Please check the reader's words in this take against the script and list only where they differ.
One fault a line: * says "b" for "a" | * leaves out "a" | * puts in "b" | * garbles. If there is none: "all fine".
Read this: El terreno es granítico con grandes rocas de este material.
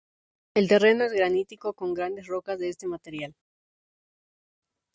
all fine